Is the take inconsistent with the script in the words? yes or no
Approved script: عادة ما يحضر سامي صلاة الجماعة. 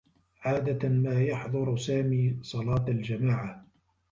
no